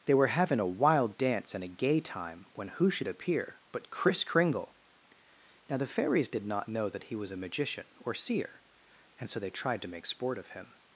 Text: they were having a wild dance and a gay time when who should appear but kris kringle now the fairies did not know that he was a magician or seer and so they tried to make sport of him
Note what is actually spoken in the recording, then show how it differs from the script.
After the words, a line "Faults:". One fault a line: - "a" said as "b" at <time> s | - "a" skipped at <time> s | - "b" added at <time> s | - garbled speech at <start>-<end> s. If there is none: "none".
they were having a wild dance and a gay time when who should appear but kris kringle now the fairies did not know that he was a magician or seer and so they tried to make sport of him
Faults:
none